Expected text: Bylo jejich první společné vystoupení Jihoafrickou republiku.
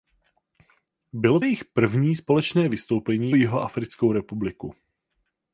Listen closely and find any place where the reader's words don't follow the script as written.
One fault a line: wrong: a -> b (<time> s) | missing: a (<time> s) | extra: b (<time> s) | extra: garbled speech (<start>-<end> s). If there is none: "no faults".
no faults